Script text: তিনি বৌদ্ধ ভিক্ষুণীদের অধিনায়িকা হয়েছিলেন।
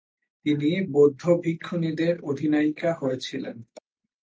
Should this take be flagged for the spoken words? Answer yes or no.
no